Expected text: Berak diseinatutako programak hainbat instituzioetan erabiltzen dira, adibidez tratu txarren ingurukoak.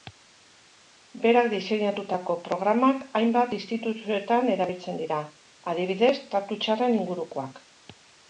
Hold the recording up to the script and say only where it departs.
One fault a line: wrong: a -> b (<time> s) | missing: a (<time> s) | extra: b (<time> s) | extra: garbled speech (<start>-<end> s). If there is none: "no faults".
no faults